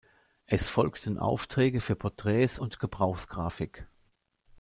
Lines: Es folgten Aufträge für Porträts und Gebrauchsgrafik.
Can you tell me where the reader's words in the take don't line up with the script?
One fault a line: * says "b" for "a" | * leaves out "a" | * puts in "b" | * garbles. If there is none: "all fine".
all fine